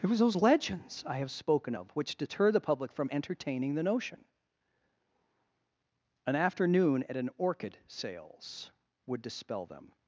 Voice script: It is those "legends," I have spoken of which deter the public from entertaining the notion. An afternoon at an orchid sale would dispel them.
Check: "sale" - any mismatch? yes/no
yes